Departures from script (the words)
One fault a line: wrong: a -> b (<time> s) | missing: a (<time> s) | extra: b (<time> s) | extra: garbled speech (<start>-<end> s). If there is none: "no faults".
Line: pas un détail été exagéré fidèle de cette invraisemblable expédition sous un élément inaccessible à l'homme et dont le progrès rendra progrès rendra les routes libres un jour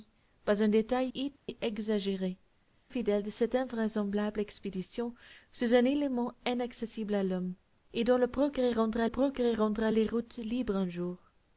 no faults